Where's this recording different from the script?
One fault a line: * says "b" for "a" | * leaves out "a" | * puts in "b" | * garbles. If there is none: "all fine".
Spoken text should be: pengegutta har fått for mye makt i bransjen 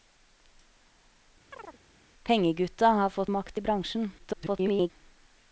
* leaves out "for mye"
* garbles